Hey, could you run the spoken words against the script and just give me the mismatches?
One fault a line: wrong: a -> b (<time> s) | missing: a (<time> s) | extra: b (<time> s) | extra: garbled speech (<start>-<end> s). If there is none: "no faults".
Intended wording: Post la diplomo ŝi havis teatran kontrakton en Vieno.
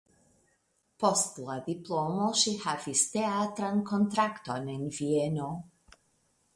no faults